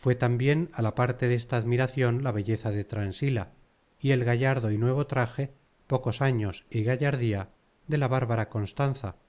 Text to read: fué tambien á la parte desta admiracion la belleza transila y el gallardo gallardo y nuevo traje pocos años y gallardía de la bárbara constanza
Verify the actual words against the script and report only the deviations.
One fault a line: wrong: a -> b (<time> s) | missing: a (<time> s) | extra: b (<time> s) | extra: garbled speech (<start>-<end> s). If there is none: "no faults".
extra: de (2.7 s)
missing: gallardo (4.7 s)